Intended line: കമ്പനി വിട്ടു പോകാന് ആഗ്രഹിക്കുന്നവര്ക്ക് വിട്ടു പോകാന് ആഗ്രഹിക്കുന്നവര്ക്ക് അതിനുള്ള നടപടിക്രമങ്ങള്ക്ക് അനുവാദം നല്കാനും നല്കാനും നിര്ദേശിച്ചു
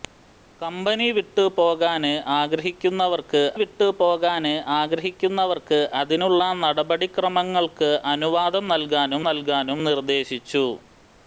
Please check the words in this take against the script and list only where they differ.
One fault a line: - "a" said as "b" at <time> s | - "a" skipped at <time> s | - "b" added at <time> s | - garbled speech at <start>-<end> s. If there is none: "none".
none